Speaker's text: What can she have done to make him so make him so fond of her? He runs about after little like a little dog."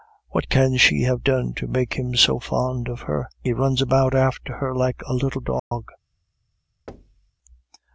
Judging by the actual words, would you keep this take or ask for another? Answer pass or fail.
fail